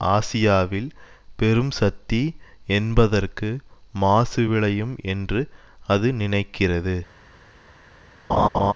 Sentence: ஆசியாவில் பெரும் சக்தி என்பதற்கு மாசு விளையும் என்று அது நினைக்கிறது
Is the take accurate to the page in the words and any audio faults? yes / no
no